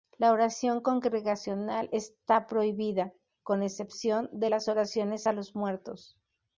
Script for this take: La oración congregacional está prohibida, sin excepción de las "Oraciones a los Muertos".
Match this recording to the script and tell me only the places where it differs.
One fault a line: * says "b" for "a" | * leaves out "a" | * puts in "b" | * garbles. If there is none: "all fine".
* says "con" for "sin"